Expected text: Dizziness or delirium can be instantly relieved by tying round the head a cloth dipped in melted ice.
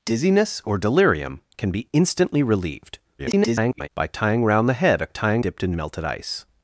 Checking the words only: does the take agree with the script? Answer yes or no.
no